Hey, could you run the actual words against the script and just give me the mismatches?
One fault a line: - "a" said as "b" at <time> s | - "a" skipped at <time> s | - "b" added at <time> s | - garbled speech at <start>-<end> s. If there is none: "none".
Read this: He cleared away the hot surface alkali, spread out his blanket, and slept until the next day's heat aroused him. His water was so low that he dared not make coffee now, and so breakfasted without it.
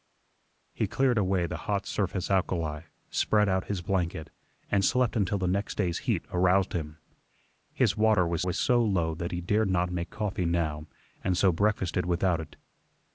- "was" added at 8.4 s